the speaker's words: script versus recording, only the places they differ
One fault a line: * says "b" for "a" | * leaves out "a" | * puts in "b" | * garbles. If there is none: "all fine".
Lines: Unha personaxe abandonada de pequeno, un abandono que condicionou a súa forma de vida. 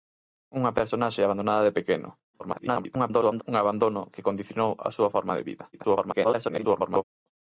* garbles
* garbles